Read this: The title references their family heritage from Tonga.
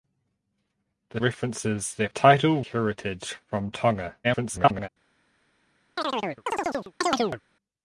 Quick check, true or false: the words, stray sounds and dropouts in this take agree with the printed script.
false